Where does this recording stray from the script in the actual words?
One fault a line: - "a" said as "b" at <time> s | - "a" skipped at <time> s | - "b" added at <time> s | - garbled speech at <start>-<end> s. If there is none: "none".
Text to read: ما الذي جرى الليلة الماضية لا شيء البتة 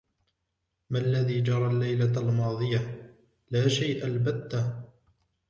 none